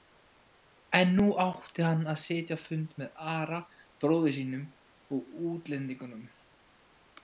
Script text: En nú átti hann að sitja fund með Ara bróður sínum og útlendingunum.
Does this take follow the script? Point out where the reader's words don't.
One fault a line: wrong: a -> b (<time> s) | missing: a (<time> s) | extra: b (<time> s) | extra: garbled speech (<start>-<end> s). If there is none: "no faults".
no faults